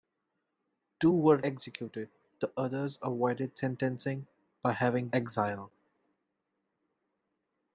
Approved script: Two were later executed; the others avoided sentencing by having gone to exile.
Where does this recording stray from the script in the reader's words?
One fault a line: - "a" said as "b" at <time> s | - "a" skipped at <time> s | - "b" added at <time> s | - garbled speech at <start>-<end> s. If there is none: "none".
- "later" skipped at 1.4 s
- "gone to" skipped at 5.1 s